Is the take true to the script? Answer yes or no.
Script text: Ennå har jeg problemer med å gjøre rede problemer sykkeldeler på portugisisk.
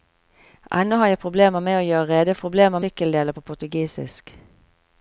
yes